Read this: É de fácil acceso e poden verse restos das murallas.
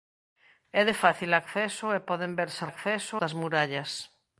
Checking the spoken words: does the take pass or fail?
fail